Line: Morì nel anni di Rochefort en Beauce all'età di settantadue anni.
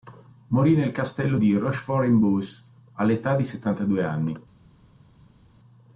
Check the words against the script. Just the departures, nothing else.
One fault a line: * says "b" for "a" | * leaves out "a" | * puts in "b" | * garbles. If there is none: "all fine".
* says "castello" for "anni"